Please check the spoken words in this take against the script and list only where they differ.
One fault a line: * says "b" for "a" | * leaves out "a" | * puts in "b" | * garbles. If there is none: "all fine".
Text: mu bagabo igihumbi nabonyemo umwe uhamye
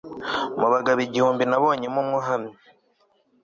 all fine